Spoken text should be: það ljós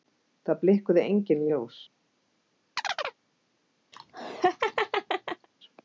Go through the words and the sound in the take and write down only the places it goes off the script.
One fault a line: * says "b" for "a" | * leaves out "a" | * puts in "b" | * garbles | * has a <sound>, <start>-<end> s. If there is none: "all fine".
* puts in "blikkuðu engin"
* has a chirp, 2.8-3.2 s
* has a laugh, 3.9-5.5 s